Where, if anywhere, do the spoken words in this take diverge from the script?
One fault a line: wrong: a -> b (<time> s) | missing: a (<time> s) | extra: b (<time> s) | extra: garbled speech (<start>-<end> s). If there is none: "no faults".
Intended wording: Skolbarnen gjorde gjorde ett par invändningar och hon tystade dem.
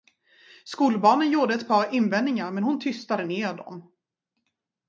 missing: gjorde (1.5 s)
wrong: och -> men (2.5 s)
extra: ner (3.2 s)